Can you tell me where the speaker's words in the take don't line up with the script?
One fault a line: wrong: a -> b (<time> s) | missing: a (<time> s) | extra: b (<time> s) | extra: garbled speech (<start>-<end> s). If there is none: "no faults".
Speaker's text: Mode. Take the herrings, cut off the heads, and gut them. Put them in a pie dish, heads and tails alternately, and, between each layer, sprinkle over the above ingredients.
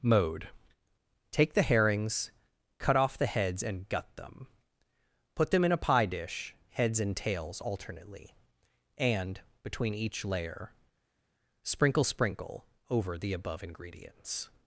extra: sprinkle (12.0 s)